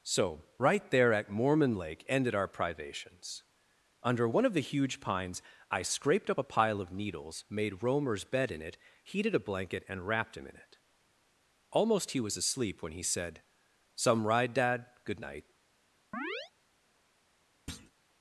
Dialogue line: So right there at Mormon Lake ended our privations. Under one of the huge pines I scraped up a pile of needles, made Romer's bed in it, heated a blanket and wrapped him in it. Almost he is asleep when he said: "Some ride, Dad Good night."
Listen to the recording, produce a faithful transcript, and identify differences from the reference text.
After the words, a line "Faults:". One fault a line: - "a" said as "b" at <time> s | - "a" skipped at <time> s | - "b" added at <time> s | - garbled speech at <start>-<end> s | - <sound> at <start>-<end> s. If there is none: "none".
So right there at Mormon Lake ended our privations. Under one of the huge pines I scraped up a pile of needles, made Romer's bed in it, heated a blanket and wrapped him in it. Almost he was asleep when he said: "Some ride, Dad Good night."
Faults:
- "is" said as "was" at 12.2 s
- chirp at 16.1-16.5 s
- thud at 17.7-17.9 s